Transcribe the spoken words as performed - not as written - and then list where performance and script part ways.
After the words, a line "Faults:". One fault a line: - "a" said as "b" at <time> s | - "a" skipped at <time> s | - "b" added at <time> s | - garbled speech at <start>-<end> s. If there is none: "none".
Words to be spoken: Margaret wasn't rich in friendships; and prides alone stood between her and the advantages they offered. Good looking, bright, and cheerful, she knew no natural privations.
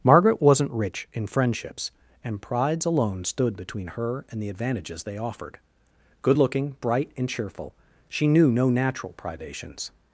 Margaret wasn't rich in friendships; and prides alone stood between her and the advantages they offered. Good looking, bright, and cheerful, she knew no natural privations.
Faults:
none